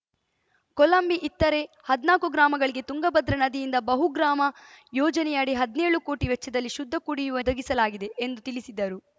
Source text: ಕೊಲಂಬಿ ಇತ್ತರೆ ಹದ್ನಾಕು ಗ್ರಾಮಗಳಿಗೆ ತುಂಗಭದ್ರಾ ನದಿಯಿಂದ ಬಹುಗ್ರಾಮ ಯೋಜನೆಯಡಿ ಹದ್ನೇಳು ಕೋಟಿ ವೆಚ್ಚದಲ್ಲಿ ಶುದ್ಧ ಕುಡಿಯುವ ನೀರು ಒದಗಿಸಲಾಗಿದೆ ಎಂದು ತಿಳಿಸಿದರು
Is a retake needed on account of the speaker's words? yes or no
yes